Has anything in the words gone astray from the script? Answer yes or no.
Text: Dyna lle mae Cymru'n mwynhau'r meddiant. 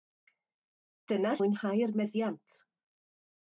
yes